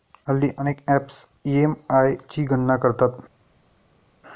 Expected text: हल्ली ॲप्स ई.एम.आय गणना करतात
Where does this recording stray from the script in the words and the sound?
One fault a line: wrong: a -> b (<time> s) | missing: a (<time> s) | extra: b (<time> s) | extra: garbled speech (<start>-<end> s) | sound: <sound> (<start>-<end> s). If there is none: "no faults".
extra: अनेक (0.6 s)
extra: ची (2.3 s)